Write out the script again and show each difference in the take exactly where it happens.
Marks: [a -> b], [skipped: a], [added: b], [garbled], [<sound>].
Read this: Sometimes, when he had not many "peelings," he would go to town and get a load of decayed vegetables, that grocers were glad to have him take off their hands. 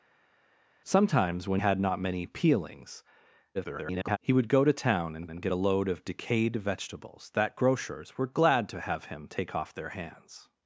Sometimes, when [skipped: he] had not many "peelings," [garbled] he would go to town and [added: and] get a load of decayed vegetables, that grocers were glad to have him take off their hands.